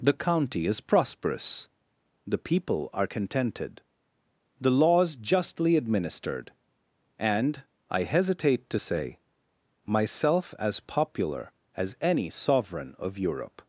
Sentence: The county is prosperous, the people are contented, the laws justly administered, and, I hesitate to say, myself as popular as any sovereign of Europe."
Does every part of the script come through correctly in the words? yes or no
yes